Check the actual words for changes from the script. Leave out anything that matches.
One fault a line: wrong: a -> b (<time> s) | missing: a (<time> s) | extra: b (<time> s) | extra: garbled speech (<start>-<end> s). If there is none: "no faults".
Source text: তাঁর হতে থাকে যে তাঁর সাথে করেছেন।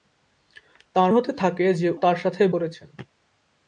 no faults